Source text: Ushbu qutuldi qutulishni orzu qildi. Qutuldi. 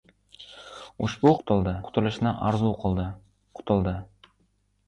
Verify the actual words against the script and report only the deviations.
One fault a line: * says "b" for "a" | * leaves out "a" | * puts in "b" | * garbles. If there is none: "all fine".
all fine